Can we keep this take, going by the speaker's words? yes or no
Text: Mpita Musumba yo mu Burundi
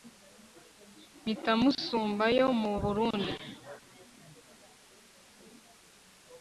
yes